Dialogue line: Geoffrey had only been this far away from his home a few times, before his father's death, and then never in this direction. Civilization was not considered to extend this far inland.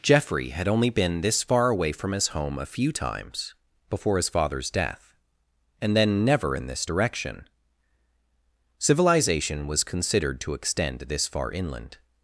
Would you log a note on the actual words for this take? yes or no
yes